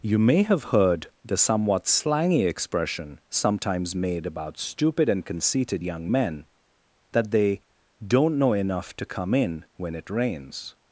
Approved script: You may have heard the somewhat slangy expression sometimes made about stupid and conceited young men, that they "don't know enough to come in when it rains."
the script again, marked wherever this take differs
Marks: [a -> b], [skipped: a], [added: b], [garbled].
You may have heard the somewhat slangy expression sometimes made about stupid and conceited young men, that they "don't know enough to come in when it rains."